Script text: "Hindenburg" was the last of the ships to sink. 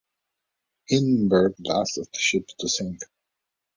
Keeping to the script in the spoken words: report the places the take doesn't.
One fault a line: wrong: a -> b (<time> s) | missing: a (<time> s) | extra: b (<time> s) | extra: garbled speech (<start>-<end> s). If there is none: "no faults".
missing: was (1.5 s)